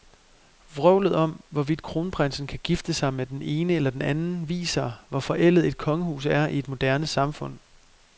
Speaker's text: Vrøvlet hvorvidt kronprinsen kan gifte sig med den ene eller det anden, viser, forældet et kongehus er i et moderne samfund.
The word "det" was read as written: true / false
false